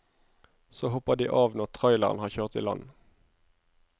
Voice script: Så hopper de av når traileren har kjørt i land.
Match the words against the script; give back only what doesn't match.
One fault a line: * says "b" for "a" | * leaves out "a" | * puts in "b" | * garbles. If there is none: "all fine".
all fine